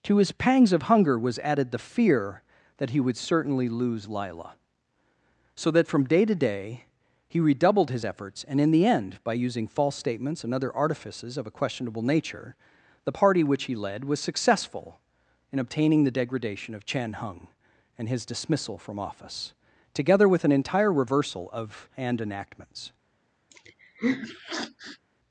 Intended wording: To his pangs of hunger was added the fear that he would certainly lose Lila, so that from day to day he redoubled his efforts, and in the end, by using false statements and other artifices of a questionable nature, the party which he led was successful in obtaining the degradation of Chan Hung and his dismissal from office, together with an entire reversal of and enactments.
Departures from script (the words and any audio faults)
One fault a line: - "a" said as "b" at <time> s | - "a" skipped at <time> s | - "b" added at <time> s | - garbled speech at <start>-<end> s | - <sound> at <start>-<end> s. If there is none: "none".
- sniff at 23.5-25.0 s